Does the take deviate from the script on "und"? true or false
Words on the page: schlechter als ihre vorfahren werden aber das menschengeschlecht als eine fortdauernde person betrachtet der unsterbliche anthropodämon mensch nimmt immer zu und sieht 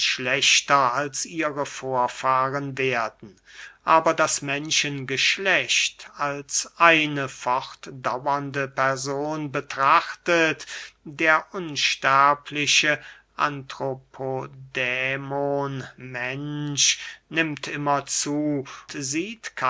true